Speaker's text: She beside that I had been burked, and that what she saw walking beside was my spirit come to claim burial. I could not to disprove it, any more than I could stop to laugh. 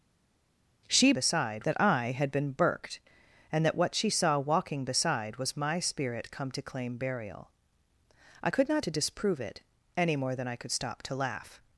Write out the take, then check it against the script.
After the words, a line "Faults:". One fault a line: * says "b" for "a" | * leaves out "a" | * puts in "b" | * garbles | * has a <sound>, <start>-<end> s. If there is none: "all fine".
She beside that I had been burked, and that what she saw walking beside was my spirit come to claim burial. I could not to disprove it, any more than I could stop to laugh.
Faults:
all fine